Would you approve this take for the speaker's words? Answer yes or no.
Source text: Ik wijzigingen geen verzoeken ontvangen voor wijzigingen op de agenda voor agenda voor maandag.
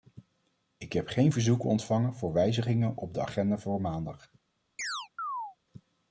no